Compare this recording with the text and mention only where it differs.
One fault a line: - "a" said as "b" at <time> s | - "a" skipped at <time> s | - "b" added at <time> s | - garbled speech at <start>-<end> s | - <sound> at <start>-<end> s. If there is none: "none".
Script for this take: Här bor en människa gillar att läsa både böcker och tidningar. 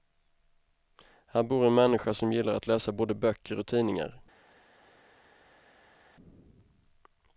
- "som" added at 2.1 s